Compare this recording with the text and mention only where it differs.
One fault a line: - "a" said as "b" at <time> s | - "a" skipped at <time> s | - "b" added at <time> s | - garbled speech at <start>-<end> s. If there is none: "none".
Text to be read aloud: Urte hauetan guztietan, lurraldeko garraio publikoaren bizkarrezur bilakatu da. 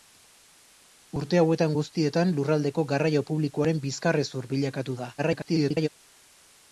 - garbled speech at 5.2-5.9 s